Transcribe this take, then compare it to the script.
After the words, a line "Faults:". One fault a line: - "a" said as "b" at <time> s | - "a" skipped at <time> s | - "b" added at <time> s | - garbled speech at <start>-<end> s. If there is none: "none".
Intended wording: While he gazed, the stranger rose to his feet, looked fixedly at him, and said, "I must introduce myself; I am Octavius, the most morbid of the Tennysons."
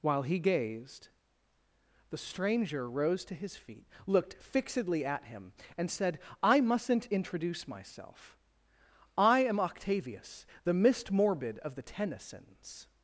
While he gazed, the stranger rose to his feet, looked fixedly at him, and said, "I mustn't introduce myself; I am Octavius, the mist morbid of the Tennysons."
Faults:
- "must" said as "mustn't" at 6.6 s
- "most" said as "mist" at 10.7 s